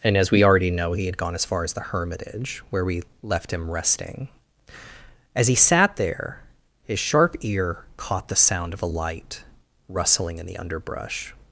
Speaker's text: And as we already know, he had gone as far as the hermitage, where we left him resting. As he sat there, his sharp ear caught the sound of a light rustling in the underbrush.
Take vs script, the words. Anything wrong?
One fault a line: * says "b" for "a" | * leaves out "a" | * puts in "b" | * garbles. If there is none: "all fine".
all fine